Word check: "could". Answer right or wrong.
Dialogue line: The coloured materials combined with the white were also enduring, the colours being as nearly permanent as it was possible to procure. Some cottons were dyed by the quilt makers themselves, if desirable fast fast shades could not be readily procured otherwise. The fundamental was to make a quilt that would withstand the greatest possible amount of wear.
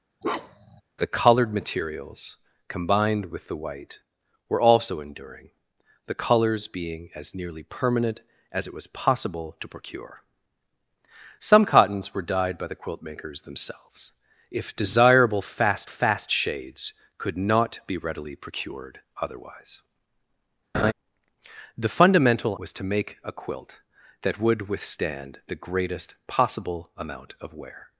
right